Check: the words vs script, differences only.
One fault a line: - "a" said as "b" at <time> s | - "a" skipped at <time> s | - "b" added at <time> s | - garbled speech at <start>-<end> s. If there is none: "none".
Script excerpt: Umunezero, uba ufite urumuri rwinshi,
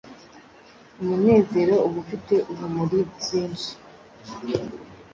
none